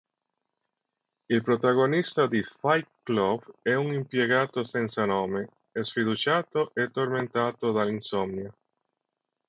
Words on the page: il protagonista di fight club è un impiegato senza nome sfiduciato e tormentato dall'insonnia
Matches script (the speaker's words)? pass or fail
pass